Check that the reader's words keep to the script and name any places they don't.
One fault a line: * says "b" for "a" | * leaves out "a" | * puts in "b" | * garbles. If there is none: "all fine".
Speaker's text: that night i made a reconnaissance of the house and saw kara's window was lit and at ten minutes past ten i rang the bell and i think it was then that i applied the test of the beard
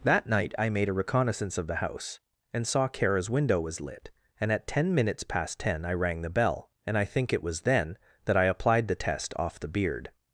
* says "off" for "of"